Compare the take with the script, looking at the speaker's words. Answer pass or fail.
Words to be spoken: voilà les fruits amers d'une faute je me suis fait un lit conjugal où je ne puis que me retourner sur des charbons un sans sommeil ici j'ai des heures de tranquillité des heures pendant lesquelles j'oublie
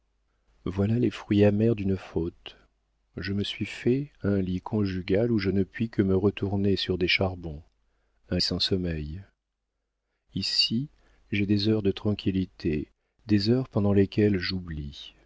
pass